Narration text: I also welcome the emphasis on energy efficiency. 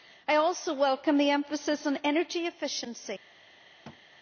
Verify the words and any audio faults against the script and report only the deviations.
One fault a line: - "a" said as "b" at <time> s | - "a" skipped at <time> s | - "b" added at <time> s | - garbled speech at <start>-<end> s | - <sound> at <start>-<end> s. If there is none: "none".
- thud at 3.8-4.0 s